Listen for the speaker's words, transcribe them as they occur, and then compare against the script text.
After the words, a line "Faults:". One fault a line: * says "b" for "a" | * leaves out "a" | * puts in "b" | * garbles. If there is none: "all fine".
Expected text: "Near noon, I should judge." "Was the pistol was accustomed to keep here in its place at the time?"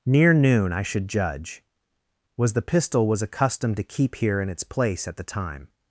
"Near noon, I should judge." "Was the pistol was accustomed to keep here in its place at the time?"
Faults:
all fine